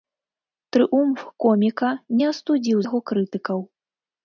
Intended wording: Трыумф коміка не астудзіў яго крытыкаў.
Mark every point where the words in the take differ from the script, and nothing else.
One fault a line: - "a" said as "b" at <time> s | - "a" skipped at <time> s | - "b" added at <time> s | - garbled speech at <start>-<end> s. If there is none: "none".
none